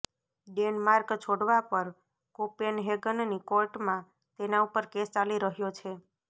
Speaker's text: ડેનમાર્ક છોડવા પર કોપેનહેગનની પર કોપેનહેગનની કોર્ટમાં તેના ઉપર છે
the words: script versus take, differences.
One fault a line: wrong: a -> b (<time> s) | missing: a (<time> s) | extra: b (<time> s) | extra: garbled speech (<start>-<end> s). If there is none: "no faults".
missing: પર કોપેનહેગનની (3.4 s)
extra: કેસ ચાલી રહ્યો (4.9 s)